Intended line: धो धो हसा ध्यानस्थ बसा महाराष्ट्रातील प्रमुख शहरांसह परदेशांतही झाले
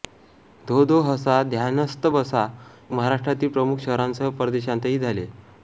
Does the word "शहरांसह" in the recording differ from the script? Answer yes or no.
no